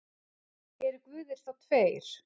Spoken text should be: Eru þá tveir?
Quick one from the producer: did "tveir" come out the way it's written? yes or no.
yes